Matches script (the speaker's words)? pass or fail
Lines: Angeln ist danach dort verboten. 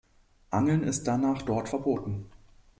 pass